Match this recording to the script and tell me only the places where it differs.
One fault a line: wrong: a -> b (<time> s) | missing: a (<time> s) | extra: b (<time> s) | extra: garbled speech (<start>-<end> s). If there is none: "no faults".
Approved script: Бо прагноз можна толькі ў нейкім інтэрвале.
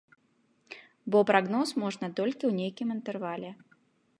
no faults